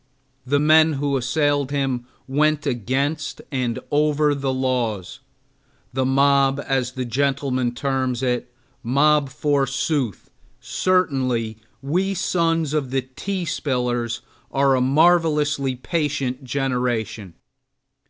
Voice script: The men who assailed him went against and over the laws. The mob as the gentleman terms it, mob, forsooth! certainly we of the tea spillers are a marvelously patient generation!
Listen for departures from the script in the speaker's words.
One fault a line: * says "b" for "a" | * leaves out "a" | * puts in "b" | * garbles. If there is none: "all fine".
* puts in "sons"